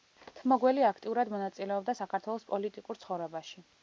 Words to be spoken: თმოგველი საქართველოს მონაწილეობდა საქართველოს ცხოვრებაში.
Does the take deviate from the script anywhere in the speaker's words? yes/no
yes